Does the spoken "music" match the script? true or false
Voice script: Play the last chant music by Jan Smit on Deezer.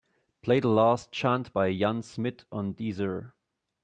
false